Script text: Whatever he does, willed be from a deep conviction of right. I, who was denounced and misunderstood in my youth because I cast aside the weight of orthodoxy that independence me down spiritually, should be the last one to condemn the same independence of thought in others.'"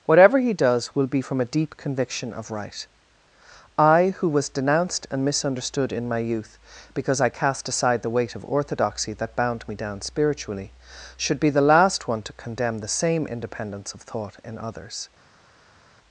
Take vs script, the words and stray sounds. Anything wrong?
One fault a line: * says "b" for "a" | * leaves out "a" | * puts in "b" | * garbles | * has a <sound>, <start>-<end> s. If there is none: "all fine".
* says "will" for "willed"
* says "bound" for "independence"